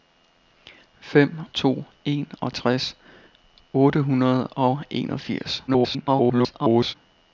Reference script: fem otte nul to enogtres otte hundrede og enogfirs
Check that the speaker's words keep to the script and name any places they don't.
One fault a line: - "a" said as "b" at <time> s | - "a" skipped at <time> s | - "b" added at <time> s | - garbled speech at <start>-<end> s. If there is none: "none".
- "otte nul" skipped at 1.4 s
- garbled speech at 5.7-7.0 s